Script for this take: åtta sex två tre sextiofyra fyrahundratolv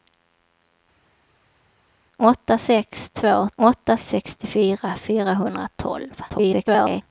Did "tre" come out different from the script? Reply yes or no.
yes